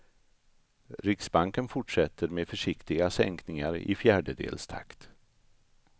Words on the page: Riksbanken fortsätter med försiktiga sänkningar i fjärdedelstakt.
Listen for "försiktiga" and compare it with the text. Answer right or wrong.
right